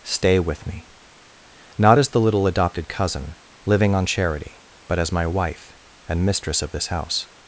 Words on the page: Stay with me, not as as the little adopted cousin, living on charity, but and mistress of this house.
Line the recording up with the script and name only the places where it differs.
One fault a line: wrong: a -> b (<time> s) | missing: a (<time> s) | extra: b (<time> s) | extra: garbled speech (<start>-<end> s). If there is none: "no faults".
missing: as (2.1 s)
extra: as my wife (5.0 s)